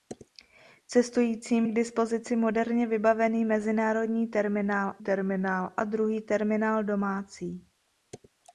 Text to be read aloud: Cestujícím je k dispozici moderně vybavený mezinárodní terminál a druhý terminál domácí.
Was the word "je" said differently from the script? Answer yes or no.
yes